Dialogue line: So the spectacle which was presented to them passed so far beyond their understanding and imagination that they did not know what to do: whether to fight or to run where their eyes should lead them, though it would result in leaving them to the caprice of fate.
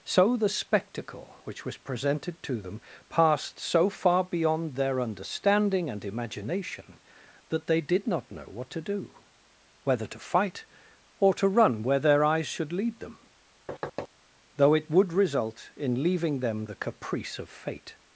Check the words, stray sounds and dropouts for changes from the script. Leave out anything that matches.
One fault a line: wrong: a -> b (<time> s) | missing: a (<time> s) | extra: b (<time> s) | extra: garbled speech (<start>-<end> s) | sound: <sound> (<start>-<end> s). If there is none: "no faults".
sound: thud (13.7-14.1 s)
missing: to (16.7 s)